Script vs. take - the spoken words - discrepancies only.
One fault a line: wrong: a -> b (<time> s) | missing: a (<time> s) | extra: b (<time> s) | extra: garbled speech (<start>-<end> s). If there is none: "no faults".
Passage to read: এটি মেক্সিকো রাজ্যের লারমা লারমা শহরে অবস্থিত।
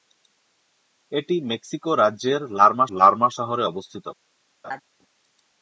no faults